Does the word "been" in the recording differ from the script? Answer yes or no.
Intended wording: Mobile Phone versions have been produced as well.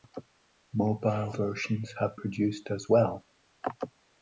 yes